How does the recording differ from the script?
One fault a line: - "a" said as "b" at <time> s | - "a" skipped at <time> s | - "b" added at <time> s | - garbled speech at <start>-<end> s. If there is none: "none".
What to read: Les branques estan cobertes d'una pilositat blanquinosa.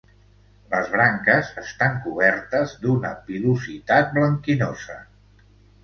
none